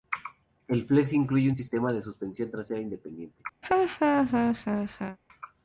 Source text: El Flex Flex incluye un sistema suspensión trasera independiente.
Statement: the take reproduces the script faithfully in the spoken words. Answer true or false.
false